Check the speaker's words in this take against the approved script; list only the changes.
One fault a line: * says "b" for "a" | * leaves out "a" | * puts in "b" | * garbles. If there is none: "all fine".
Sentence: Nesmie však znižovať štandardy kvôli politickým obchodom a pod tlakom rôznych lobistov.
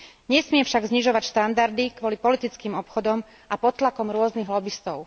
all fine